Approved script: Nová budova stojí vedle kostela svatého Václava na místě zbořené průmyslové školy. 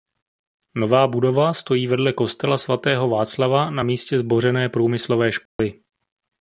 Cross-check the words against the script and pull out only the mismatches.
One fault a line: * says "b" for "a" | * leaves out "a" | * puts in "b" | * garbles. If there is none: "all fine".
all fine